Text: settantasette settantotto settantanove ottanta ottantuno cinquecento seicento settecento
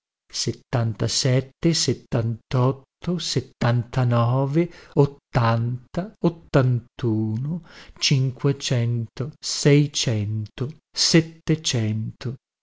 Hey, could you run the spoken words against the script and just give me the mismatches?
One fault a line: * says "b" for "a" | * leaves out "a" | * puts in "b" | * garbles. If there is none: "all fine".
all fine